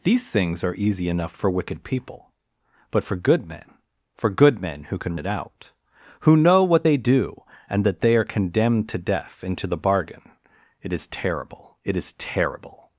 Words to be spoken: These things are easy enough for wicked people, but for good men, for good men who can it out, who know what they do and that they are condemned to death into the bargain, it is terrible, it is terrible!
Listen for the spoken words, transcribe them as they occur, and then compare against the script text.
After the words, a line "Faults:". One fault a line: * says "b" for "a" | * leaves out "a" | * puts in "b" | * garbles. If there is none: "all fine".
These things are easy enough for wicked people, but for good men, for good men who can it out, who know what they do and that they are condemned to death into the bargain, it is terrible, it is terrible!
Faults:
all fine